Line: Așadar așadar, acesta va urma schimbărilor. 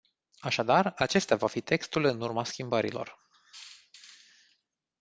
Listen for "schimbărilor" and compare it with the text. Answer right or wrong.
right